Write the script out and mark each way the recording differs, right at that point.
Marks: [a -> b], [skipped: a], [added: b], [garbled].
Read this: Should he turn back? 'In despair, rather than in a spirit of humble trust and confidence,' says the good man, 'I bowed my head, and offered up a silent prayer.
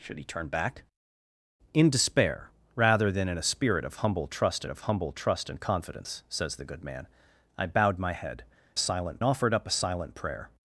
Should he turn back? 'In despair, rather than in a spirit of humble trust [added: of humble trust] and confidence,' says the good man, 'I bowed my head, [and -> silent] offered up a silent prayer.